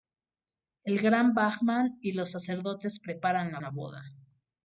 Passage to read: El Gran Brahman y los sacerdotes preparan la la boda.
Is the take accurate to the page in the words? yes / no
yes